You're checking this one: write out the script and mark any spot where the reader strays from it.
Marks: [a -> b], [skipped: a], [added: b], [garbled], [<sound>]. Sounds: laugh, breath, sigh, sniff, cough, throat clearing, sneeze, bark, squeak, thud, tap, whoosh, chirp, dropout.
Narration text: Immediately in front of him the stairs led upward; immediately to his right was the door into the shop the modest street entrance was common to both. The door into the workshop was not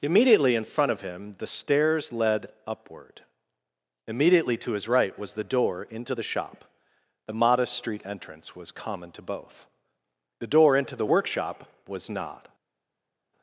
Immediately in front of him the stairs led upward; immediately to his right was the door into the shop the modest street entrance was common to both. The door into the workshop was not